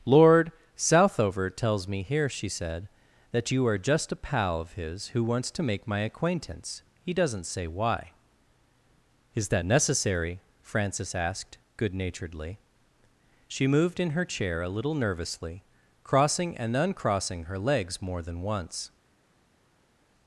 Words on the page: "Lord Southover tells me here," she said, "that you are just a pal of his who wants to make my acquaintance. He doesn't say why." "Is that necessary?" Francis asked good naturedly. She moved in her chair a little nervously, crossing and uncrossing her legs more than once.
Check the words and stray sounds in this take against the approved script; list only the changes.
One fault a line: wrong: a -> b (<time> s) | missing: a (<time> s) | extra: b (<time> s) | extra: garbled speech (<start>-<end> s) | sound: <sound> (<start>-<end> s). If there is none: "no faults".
no faults